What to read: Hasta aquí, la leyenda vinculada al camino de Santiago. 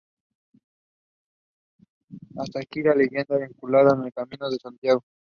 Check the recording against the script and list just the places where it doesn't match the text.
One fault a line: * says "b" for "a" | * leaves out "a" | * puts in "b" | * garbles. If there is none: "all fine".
all fine